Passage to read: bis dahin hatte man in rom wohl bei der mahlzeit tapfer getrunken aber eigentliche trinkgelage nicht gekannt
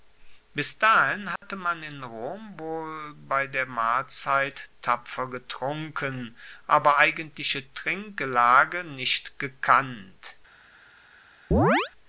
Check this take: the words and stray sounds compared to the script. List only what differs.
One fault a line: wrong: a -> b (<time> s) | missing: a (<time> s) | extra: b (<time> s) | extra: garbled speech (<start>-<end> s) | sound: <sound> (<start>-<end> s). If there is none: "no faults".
sound: dropout (1.4-1.4 s)
sound: chirp (11.5-11.9 s)